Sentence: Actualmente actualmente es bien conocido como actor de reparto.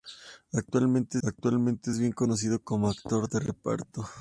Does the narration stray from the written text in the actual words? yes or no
no